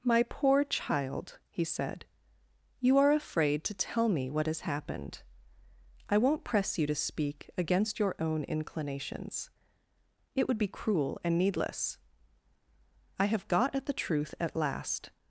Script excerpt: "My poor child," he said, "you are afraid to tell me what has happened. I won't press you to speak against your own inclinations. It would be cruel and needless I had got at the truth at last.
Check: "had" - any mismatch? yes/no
yes